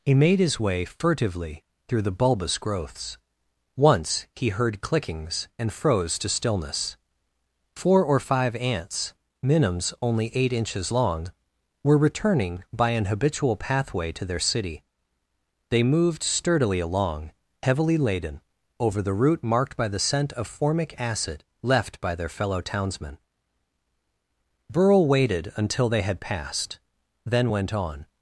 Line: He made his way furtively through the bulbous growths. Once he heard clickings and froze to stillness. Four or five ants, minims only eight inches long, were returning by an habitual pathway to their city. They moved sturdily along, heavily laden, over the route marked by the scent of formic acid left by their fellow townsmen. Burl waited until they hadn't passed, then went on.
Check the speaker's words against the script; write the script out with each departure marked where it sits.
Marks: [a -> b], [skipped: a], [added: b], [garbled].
He made his way furtively through the bulbous growths. Once he heard clickings and froze to stillness. Four or five ants, minims only eight inches long, were returning by an habitual pathway to their city. They moved sturdily along, heavily laden, over the route marked by the scent of formic acid left by their fellow townsmen. Burl waited until they [hadn't -> had] passed, then went on.